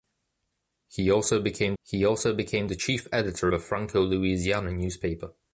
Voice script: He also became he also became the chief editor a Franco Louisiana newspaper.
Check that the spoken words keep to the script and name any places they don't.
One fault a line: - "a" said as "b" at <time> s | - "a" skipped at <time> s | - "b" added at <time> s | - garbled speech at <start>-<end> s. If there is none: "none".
none